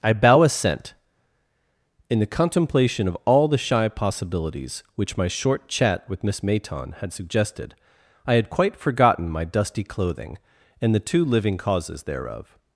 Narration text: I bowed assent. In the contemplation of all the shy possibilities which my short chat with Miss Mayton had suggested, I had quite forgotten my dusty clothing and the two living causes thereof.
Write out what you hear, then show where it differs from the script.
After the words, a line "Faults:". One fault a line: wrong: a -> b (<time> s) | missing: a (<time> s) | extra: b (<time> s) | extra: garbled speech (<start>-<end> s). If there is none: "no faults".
I bow assent. In the contemplation of all the shy possibilities which my short chat with Miss Mayton had suggested, I had quite forgotten my dusty clothing and the two living causes thereof.
Faults:
wrong: bowed -> bow (0.1 s)